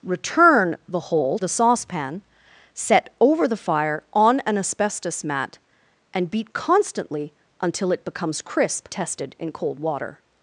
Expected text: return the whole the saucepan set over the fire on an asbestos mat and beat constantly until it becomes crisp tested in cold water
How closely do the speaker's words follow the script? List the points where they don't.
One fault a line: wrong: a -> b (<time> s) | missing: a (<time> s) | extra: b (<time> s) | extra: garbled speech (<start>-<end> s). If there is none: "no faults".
no faults